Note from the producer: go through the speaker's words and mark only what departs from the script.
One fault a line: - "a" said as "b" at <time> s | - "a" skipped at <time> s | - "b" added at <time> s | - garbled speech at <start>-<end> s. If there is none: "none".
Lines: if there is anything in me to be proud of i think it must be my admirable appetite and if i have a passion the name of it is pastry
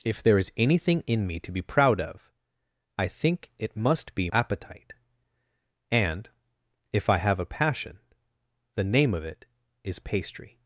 - "my admirable" skipped at 4.3 s